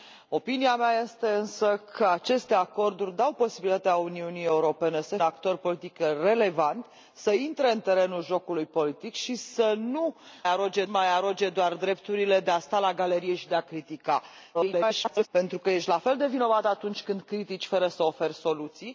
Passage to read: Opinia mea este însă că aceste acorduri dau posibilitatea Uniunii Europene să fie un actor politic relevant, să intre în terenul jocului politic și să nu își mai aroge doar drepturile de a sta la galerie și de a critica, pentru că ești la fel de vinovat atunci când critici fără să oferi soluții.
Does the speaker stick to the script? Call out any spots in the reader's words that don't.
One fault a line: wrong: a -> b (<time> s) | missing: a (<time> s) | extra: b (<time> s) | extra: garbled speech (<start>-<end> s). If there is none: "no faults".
missing: fie un (5.2 s)
wrong: își -> aroge (10.5 s)
extra: garbled speech (14.5-15.3 s)